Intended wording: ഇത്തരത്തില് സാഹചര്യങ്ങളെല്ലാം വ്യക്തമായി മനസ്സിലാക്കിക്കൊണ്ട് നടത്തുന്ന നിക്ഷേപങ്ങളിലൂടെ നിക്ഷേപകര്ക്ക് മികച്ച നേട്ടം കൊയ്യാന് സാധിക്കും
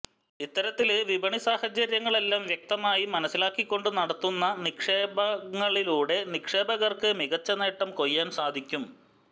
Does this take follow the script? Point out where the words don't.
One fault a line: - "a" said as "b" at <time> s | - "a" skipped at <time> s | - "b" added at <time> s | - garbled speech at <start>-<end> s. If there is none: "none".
- "വിപണി" added at 1.1 s